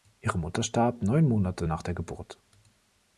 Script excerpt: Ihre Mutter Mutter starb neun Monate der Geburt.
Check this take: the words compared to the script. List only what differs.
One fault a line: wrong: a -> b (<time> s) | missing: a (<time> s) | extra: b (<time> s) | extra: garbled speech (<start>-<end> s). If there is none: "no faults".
missing: Mutter (0.6 s)
extra: nach (1.6 s)